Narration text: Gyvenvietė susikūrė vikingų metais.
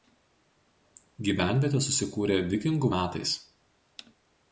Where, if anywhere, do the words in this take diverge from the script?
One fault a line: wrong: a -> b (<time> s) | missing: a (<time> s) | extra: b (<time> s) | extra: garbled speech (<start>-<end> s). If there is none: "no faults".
no faults